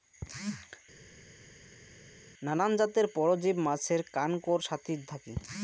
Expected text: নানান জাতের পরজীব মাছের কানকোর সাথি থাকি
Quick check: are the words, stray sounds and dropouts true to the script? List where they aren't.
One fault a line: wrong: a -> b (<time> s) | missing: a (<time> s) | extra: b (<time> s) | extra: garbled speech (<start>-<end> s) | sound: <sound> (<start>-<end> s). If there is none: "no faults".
no faults